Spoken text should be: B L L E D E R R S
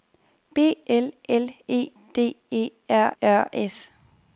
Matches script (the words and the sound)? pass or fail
pass